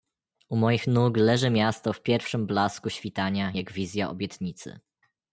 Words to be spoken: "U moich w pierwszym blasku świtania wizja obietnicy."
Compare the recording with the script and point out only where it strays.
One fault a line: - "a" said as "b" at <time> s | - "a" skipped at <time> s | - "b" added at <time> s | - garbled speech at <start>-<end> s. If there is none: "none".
- "nóg leży miasto" added at 0.9 s
- "jak" added at 3.5 s